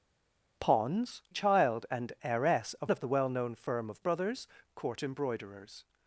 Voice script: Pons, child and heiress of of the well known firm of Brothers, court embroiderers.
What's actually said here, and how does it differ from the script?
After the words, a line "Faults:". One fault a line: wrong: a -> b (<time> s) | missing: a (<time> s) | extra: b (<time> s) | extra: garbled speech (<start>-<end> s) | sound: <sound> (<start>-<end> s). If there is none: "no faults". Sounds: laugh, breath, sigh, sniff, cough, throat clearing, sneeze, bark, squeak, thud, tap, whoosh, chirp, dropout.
Pons, child and heiress of of the well known firm of Brothers, court embroiderers.
Faults:
no faults